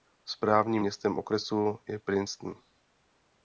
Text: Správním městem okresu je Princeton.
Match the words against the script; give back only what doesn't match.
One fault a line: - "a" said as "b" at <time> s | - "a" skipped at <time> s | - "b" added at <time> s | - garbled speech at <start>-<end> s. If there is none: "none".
none